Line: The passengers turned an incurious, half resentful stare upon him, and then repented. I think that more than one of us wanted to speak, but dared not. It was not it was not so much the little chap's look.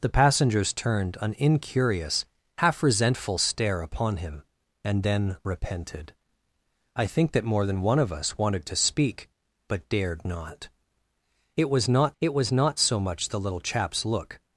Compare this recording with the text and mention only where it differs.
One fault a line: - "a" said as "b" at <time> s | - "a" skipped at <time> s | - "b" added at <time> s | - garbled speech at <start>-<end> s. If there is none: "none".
none